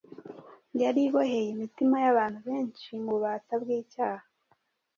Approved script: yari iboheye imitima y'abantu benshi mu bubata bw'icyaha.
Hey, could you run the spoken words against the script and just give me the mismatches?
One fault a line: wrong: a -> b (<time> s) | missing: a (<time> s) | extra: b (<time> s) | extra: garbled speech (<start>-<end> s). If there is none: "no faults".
no faults